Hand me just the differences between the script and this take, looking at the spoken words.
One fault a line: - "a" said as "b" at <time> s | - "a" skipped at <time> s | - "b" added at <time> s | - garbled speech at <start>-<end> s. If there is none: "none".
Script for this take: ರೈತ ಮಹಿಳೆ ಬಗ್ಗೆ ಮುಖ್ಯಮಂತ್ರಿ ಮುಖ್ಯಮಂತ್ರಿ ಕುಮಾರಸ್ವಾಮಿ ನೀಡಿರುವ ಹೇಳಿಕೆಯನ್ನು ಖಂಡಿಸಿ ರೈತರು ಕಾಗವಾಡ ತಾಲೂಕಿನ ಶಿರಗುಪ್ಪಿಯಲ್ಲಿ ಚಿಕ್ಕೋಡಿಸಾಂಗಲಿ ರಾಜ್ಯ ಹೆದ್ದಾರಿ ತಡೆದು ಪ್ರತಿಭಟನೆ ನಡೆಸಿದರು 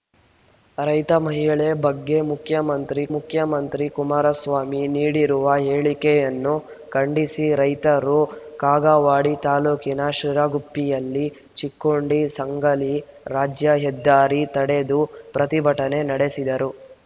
none